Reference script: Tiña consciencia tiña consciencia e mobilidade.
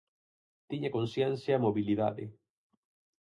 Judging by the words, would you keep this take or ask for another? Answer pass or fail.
fail